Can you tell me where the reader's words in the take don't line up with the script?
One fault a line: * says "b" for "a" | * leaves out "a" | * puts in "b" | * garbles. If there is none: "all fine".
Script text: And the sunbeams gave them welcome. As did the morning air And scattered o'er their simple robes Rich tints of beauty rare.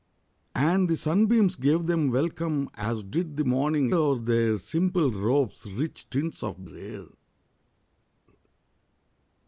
* leaves out "air And scattered"
* leaves out "beauty"